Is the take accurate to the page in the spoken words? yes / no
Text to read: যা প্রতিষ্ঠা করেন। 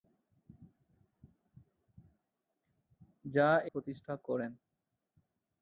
yes